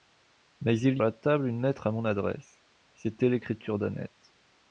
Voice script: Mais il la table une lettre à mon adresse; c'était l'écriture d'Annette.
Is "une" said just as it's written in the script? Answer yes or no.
yes